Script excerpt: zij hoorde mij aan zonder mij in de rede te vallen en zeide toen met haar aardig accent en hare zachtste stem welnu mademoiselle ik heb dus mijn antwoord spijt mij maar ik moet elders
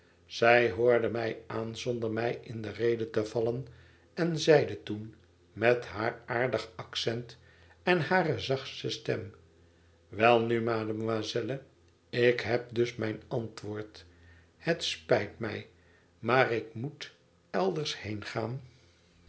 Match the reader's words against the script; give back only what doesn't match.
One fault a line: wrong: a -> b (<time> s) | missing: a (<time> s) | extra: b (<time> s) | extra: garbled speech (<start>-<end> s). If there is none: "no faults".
extra: het (14.6 s)